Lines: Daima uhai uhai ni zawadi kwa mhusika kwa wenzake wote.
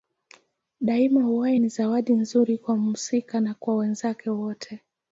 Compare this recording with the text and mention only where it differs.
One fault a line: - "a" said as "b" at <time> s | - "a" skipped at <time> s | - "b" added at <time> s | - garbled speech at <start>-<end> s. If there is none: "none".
- "uhai" skipped at 1.6 s
- "nzuri" added at 2.1 s
- "na" added at 3.4 s